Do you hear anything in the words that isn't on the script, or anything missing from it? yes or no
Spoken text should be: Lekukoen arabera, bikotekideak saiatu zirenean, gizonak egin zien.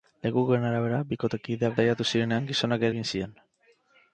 no